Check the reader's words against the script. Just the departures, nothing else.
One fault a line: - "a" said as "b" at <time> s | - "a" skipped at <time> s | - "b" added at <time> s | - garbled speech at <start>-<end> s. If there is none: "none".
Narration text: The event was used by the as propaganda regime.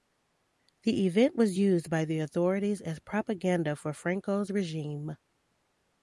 - "authorities" added at 2.2 s
- "for Franco's" added at 3.8 s